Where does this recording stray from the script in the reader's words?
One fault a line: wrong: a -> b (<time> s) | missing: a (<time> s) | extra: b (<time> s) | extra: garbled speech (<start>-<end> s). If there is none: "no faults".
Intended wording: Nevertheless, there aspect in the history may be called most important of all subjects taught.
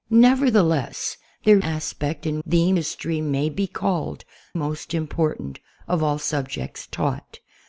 no faults